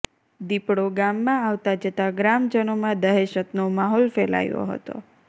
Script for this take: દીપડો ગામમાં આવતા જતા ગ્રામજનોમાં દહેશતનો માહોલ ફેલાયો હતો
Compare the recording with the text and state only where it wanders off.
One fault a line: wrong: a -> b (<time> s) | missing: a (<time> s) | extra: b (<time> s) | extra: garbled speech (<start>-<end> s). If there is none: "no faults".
no faults